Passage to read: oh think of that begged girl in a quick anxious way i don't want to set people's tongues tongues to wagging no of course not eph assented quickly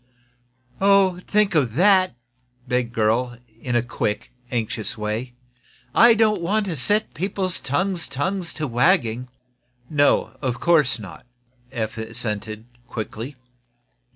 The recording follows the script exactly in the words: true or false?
true